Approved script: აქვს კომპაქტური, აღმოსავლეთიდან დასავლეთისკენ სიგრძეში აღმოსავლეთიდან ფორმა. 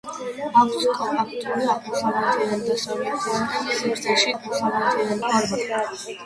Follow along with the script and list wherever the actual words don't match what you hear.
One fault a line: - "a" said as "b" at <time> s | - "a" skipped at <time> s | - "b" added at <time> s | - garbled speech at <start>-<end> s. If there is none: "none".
none